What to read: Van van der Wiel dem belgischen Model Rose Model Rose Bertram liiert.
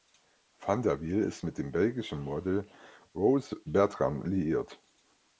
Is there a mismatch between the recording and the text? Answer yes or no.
yes